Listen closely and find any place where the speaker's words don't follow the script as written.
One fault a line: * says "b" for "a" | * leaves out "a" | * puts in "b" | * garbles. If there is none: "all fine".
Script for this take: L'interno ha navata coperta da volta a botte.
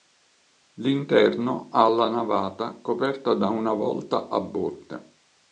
* puts in "la"
* puts in "una"